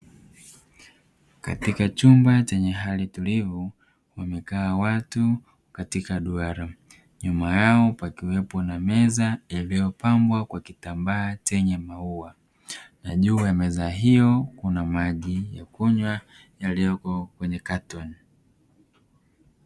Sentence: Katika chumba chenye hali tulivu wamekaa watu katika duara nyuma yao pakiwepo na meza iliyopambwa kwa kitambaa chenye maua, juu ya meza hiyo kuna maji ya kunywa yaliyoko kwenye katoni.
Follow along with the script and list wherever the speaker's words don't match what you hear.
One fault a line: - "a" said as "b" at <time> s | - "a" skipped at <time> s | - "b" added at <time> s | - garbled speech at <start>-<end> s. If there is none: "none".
- "na" added at 13.0 s